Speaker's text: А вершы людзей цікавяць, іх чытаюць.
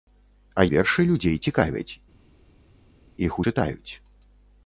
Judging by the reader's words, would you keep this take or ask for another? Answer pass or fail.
pass